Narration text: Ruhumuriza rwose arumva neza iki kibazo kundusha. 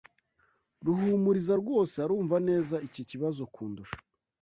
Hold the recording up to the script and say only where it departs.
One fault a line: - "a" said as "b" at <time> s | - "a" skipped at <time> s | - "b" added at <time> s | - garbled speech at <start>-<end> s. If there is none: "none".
none